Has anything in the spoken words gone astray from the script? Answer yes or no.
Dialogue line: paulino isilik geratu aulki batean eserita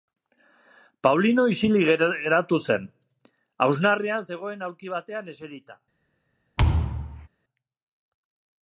yes